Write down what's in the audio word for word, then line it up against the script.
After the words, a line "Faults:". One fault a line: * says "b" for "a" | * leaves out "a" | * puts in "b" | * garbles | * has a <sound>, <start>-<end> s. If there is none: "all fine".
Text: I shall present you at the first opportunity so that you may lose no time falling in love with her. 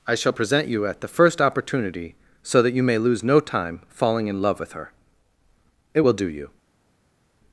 I shall present you at the first opportunity so that you may lose no time falling in love with her. It will do you
Faults:
* puts in "It will do you"